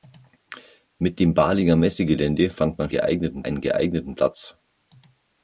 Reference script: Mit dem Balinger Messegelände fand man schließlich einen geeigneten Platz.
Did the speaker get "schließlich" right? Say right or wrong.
wrong